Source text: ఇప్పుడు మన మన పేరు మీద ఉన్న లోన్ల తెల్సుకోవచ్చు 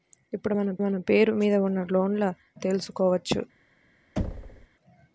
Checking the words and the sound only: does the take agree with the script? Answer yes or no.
no